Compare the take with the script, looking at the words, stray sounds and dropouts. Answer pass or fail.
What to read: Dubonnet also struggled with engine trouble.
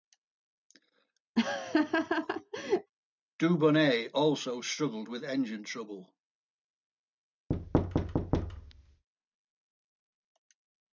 fail